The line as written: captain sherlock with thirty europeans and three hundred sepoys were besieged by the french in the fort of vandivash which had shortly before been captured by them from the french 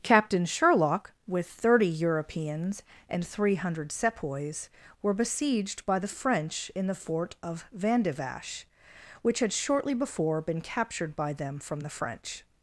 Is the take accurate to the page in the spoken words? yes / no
yes